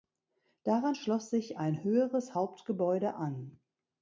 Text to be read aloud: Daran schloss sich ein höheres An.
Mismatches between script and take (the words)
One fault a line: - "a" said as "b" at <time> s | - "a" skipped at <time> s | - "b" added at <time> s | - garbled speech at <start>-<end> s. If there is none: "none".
- "Hauptgebäude" added at 2.3 s